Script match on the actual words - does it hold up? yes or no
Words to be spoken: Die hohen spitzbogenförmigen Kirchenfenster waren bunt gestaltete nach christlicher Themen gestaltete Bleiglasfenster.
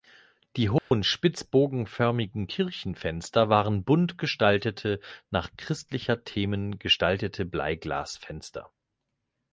yes